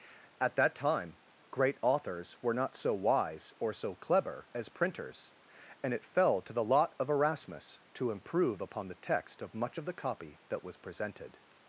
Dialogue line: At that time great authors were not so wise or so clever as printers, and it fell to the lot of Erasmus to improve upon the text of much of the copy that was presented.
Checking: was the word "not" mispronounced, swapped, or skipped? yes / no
no